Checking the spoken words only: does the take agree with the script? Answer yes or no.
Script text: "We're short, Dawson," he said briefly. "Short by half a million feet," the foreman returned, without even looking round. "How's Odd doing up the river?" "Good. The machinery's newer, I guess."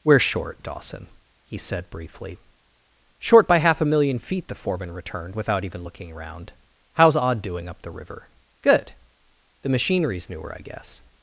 no